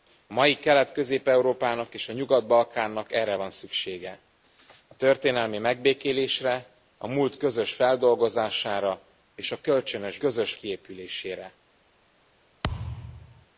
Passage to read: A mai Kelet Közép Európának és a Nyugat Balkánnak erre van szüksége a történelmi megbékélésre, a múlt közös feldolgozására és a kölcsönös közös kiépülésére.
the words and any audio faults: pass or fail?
fail